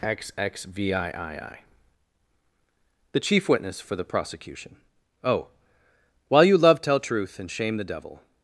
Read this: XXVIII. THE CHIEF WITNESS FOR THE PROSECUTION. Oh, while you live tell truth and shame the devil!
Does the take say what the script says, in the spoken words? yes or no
no